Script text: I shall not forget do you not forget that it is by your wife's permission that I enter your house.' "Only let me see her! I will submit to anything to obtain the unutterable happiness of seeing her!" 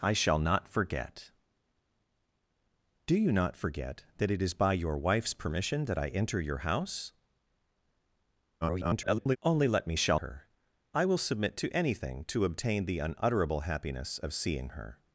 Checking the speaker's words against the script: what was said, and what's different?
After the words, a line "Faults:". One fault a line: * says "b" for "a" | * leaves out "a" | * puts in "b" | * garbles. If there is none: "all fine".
I shall not forget do you not forget that it is by your wife's permission that I enter your house.' [garbled] "Only let me shall her! I will submit to anything to obtain the unutterable happiness of seeing her!"
Faults:
* garbles
* says "shall" for "see"